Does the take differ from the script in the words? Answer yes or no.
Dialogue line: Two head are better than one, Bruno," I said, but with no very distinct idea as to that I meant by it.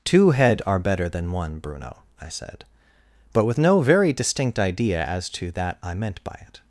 no